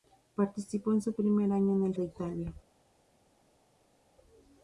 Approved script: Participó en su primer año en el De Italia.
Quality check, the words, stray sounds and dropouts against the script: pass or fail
pass